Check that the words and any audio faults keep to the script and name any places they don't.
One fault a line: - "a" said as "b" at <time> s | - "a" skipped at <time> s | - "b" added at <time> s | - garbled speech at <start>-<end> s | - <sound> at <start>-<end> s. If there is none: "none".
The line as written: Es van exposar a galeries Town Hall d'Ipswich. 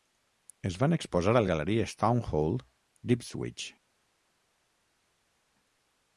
none